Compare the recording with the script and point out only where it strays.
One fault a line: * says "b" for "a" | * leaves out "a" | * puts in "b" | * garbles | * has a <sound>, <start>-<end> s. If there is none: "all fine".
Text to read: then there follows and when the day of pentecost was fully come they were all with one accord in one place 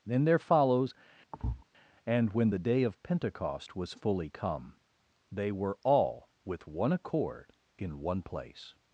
* has a thud, 1.3-1.6 s